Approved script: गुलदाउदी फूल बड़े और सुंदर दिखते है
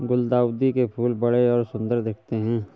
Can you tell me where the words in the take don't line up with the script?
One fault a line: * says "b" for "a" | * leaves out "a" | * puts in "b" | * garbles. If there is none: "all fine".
* puts in "के"